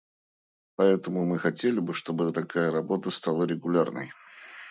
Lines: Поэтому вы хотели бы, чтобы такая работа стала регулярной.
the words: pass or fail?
fail